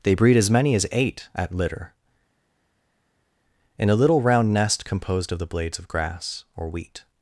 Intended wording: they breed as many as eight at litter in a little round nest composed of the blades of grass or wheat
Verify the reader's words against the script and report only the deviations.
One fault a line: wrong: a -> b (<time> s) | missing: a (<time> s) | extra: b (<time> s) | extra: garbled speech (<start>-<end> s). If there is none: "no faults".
no faults